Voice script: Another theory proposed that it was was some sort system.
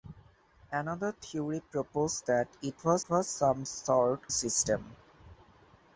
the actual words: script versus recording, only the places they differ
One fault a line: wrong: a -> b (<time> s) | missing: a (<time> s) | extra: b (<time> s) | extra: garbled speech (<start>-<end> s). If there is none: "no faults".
no faults